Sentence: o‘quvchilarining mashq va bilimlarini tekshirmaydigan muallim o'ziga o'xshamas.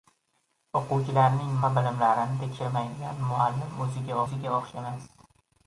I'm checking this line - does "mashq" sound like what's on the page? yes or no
no